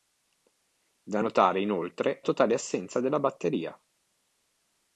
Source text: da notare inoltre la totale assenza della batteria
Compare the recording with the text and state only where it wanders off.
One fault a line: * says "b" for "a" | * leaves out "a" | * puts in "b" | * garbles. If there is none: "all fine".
* leaves out "la"